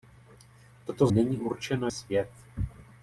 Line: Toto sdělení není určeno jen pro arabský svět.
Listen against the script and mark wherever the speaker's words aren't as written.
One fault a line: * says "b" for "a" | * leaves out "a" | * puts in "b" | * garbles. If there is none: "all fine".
* leaves out "sdělení"
* leaves out "jen pro arabský"